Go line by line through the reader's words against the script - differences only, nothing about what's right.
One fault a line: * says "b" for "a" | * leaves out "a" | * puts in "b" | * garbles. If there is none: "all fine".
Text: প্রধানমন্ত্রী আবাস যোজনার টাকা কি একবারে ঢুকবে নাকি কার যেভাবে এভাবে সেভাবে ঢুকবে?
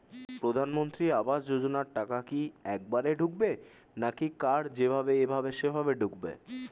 all fine